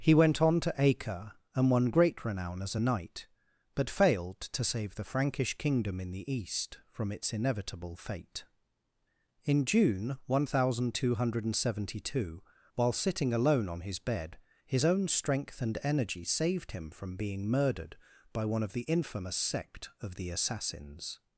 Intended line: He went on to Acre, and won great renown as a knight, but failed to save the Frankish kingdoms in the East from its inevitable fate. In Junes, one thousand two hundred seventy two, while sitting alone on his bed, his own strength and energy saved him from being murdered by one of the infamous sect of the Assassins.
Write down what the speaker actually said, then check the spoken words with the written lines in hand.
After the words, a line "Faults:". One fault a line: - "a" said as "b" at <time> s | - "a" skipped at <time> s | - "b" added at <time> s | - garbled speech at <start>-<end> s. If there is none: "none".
He went on to Acre, and won great renown as a knight, but failed to save the Frankish kingdom in the East from its inevitable fate. In June, one thousand two hundred seventy two, while sitting alone on his bed, his own strength and energy saved him from being murdered by one of the infamous sect of the Assassins.
Faults:
- "kingdoms" said as "kingdom" at 5.6 s
- "Junes" said as "June" at 9.7 s